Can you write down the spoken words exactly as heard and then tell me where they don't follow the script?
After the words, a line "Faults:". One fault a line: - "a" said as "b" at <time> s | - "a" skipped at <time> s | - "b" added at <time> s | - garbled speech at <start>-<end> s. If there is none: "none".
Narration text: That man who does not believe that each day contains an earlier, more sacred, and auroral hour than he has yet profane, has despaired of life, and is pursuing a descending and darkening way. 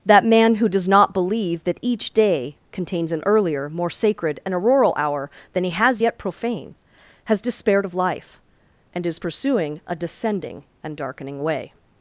That man who does not believe that each day contains an earlier, more sacred, and auroral hour than he has yet profane, has despaired of life, and is pursuing a descending and darkening way.
Faults:
none